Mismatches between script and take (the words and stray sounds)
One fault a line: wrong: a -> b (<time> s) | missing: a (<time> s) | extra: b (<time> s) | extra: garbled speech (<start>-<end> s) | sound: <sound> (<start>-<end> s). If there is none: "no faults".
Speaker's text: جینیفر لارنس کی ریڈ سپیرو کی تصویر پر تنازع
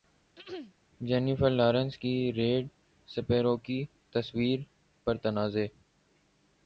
sound: throat clearing (0.4-0.7 s)